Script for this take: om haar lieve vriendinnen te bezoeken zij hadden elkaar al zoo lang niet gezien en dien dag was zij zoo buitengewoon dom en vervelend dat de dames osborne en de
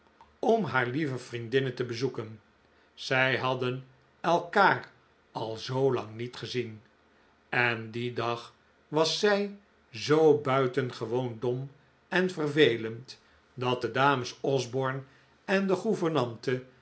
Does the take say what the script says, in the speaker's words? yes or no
yes